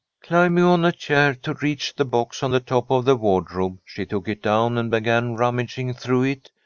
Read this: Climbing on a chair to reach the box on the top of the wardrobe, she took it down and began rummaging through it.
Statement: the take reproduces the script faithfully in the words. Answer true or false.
true